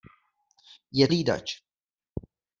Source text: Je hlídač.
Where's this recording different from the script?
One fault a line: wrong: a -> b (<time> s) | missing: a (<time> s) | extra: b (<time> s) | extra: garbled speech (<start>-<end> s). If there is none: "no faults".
no faults